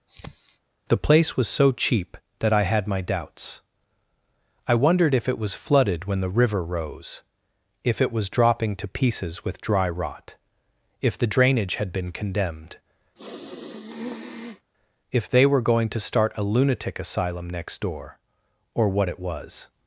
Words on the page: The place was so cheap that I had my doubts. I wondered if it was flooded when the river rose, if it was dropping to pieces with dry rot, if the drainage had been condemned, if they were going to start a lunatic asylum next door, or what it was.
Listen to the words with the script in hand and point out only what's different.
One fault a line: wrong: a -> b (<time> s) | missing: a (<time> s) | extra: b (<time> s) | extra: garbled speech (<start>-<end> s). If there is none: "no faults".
no faults